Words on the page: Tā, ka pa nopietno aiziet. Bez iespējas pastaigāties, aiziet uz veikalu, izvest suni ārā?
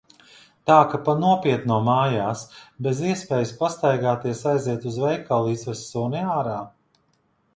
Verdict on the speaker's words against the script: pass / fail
fail